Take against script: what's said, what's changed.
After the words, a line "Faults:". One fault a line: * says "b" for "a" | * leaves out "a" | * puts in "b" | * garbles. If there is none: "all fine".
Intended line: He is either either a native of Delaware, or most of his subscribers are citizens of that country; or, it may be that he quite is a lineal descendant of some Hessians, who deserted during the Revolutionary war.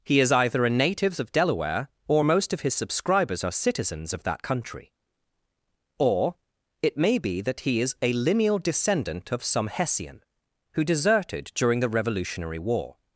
He is either a native of Delaware, or most of his subscribers are citizens of that country; or, it may be that he is a lineal descendant of some Hessian, who deserted during the Revolutionary war.
Faults:
* leaves out "either"
* leaves out "quite"
* says "Hessian" for "Hessians"